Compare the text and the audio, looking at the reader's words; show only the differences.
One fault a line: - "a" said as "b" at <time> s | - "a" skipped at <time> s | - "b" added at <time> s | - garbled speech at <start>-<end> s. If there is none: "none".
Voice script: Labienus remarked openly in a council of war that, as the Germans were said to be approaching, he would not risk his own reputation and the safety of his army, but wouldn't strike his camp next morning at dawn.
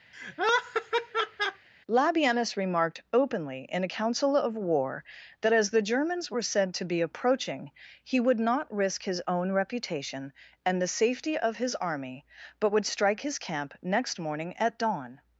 - "wouldn't" said as "would" at 12.7 s